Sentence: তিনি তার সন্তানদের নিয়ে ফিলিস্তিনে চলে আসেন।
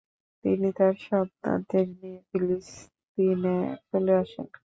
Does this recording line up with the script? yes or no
yes